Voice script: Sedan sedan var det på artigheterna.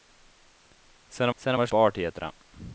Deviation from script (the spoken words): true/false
false